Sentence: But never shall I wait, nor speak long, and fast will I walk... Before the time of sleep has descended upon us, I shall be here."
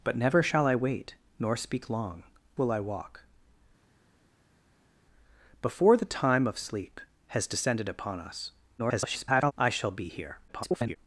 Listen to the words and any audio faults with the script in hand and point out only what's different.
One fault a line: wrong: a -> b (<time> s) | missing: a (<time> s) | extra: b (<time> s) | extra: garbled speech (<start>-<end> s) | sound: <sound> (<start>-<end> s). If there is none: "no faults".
missing: and fast (2.2 s)
extra: garbled speech (8.8-9.5 s)
extra: garbled speech (10.5-11.0 s)